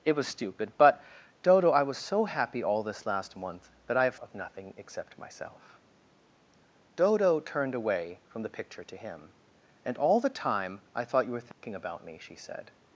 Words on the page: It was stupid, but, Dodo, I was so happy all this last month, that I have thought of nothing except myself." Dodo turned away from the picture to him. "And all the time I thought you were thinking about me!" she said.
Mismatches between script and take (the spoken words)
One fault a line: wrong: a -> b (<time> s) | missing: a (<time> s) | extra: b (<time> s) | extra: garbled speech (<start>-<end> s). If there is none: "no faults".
missing: thought (4.2 s)